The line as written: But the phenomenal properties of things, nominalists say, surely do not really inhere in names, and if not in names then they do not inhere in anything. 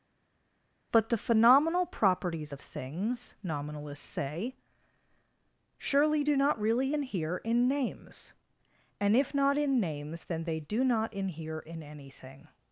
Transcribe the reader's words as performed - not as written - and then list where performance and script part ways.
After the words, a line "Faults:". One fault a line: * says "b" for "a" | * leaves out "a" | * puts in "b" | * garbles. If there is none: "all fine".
But the phenomenal properties of things, nominalists say, surely do not really inhere in names, and if not in names then they do not inhere in anything.
Faults:
all fine